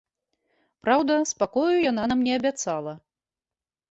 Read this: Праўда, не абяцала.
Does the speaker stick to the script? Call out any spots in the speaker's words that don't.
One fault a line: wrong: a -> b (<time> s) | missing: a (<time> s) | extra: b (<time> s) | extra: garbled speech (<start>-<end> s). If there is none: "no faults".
extra: спакою яна нам (1.3 s)